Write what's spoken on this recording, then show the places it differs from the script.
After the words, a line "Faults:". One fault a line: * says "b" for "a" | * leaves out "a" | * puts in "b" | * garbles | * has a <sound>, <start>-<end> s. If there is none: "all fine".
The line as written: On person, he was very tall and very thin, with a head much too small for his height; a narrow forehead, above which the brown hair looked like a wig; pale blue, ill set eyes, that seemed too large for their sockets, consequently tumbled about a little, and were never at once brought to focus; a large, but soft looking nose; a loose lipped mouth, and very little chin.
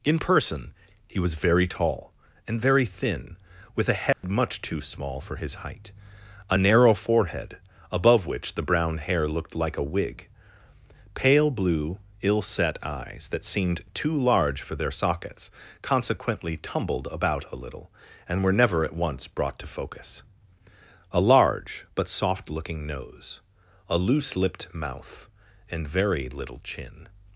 In person, he was very tall and very thin, with a head much too small for his height; a narrow forehead, above which the brown hair looked like a wig; pale blue, ill set eyes, that seemed too large for their sockets, consequently tumbled about a little, and were never at once brought to focus; a large, but soft looking nose; a loose lipped mouth, and very little chin.
Faults:
* says "In" for "On"
* has a dropout, 4.1-4.2 s